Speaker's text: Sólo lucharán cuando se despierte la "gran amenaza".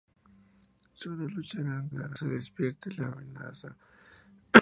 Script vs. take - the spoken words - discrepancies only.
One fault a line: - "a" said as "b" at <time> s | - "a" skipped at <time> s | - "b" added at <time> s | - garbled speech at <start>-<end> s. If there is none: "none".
- "cuando" said as "gran" at 1.9 s
- "gran" skipped at 3.1 s